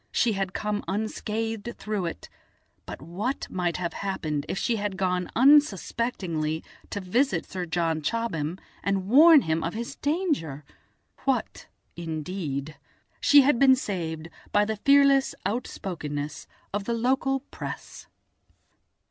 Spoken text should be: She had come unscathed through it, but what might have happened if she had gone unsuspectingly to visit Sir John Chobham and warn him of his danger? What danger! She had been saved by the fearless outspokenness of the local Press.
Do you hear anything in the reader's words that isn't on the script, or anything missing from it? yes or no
yes